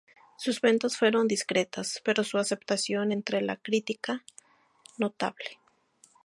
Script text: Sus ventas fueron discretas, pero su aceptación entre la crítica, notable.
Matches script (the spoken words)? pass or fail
pass